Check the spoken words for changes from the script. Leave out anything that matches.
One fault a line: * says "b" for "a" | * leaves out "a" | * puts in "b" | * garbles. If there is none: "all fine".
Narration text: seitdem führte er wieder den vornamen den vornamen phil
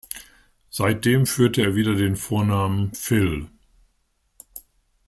* leaves out "den vornamen"